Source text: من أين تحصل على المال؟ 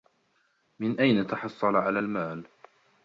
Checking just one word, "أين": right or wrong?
right